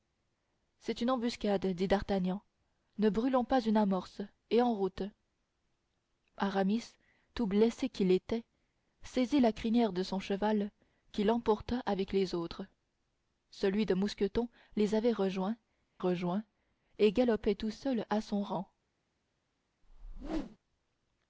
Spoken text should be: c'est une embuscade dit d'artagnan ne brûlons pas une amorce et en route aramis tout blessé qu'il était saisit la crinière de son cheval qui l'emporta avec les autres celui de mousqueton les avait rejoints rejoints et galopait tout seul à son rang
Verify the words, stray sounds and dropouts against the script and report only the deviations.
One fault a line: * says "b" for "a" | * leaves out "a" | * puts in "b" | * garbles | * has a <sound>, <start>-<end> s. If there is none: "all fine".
* has a whoosh, 19.8-20.6 s